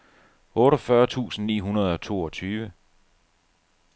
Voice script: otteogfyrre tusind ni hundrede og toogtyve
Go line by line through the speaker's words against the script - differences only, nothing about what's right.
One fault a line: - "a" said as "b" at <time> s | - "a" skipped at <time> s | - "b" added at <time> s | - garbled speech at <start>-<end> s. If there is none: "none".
none